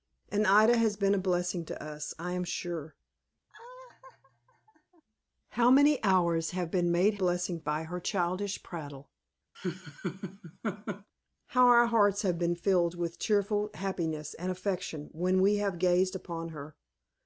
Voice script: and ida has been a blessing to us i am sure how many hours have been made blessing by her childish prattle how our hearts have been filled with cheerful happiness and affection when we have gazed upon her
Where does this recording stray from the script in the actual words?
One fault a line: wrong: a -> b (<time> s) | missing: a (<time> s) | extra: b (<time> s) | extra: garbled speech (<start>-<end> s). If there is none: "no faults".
no faults